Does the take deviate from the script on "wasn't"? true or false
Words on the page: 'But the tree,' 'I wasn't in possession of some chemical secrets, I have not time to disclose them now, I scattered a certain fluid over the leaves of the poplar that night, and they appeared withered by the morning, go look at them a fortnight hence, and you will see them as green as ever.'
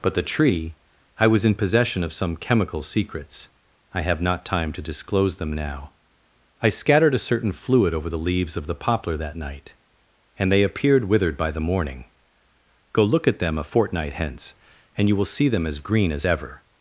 true